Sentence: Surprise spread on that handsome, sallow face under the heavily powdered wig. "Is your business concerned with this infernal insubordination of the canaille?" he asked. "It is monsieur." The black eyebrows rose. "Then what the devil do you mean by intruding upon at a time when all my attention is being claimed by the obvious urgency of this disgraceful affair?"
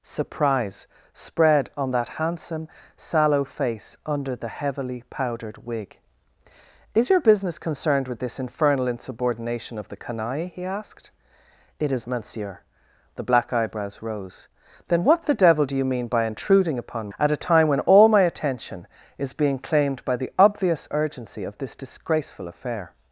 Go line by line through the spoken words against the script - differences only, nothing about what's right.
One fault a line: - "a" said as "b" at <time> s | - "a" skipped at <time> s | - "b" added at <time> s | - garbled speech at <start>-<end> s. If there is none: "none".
none